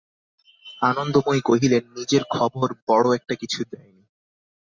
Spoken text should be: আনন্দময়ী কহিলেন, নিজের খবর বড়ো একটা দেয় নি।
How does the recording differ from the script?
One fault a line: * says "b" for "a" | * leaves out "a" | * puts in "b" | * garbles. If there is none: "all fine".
* puts in "কিছু"